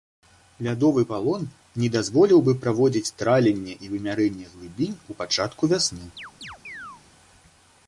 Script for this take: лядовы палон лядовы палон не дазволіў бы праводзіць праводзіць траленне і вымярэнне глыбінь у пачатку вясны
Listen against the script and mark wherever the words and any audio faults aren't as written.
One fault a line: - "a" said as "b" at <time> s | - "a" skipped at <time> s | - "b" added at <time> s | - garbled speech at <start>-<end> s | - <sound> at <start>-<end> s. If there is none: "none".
- "лядовы палон" skipped at 1.4 s
- "праводзіць" skipped at 3.1 s
- chirp at 6.2-7.0 s